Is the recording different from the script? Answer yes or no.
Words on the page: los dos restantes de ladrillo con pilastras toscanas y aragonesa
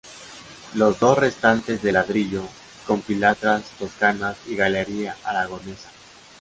yes